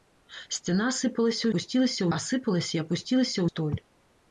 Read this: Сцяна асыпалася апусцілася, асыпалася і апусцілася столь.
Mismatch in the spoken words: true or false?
false